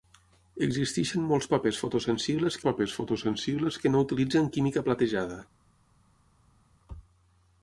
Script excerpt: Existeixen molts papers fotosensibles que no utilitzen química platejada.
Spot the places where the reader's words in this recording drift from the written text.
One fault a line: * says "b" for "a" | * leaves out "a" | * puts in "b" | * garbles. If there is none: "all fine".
* puts in "papers fotosensibles"